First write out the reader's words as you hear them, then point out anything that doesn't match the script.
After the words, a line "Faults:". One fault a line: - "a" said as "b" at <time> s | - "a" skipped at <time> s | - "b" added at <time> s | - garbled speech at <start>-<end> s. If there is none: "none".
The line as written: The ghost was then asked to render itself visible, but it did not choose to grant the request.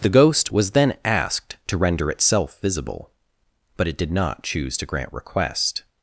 The ghost was then asked to render itself visible, but it did not choose to grant request.
Faults:
- "the" skipped at 5.1 s